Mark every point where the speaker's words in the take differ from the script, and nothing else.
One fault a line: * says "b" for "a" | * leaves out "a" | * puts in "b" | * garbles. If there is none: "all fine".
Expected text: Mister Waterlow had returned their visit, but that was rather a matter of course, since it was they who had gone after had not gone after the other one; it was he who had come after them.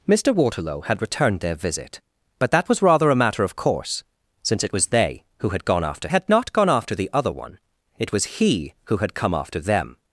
all fine